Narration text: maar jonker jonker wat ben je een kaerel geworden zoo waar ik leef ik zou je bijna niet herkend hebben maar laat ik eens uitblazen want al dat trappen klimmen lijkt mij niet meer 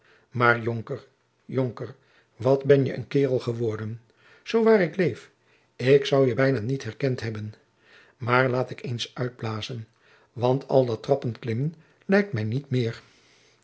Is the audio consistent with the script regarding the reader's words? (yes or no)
yes